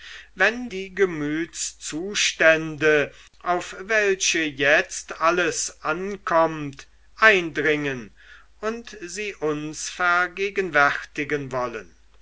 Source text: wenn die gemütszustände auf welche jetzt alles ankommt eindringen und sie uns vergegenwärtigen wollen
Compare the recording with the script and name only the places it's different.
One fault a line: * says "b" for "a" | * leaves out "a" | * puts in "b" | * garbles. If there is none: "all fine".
all fine